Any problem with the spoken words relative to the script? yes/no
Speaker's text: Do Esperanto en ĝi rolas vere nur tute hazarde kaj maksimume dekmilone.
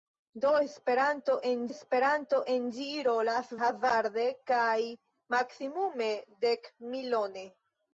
yes